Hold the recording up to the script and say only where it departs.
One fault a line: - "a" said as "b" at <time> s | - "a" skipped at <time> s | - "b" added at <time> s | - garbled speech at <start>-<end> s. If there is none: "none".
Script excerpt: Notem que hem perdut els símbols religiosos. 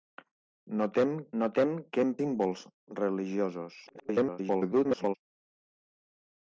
- "notem" added at 1.4 s
- "perdut els" skipped at 2.1 s
- garbled speech at 3.9-5.2 s